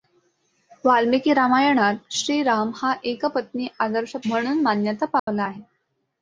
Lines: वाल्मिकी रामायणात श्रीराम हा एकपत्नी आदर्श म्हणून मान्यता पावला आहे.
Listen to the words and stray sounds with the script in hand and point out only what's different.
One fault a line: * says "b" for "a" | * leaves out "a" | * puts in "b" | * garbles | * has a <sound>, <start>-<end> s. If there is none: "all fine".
* has a dropout, 5.2-5.3 s